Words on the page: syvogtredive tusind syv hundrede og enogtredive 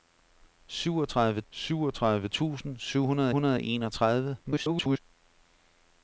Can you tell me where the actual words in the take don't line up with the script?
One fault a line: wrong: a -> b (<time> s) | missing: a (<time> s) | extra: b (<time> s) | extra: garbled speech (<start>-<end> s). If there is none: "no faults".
extra: syvogtredive (1.5 s)
extra: hundrede (3.3 s)
extra: garbled speech (4.4-5.0 s)